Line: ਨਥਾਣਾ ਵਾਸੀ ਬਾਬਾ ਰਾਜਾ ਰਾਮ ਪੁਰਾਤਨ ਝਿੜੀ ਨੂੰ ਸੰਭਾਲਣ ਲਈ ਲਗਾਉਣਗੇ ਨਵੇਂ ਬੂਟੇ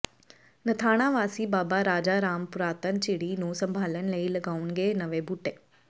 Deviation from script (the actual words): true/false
false